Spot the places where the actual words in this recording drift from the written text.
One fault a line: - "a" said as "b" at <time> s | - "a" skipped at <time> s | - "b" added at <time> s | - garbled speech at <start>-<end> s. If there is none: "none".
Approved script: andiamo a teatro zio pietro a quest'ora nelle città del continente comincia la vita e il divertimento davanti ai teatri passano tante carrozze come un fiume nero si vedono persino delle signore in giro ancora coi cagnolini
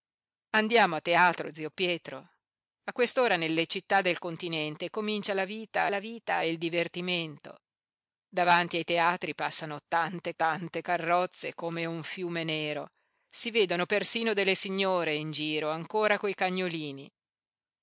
- "la vita" added at 5.9 s
- "tante" added at 10.3 s